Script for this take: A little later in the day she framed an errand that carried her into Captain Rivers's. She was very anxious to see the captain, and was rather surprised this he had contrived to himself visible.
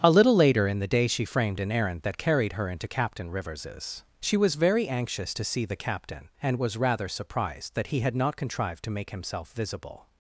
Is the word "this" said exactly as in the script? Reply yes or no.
no